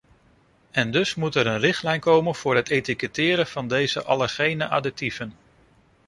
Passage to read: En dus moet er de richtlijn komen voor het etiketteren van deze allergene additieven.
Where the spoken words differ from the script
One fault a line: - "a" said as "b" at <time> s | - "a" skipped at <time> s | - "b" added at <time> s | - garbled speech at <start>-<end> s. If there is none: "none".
- "de" said as "een" at 1.5 s